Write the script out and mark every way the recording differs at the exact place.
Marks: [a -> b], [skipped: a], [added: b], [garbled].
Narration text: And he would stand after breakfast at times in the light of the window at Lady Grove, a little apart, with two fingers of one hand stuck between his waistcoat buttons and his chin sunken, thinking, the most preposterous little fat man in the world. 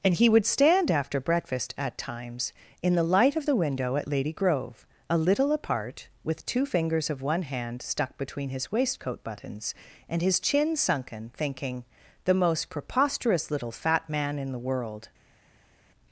And he would stand after breakfast at times in the light of the window at Lady Grove, a little apart, with two fingers of one hand stuck between his waistcoat buttons and his chin sunken, thinking, the most preposterous little fat man in the world.